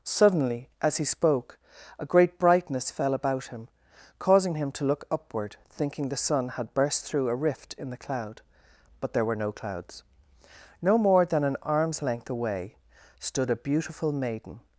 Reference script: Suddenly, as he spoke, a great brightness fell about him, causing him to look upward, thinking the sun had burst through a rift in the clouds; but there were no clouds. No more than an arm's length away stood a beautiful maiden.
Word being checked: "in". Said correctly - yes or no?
yes